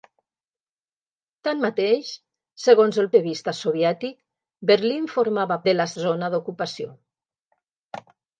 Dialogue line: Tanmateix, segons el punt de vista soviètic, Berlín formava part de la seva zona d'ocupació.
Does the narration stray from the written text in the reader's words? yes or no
yes